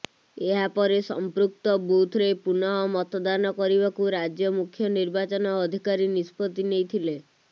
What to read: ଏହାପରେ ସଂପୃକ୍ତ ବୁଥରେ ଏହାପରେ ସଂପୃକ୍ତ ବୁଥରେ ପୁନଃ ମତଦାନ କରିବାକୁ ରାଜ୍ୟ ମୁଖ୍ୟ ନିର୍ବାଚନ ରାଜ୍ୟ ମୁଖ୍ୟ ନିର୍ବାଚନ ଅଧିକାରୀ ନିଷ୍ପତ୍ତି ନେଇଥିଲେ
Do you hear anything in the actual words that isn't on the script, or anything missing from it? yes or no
yes